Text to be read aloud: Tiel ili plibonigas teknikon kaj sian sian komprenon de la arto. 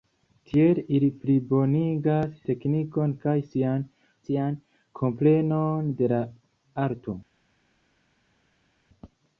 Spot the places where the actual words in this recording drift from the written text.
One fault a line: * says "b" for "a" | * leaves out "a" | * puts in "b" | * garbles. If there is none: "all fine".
all fine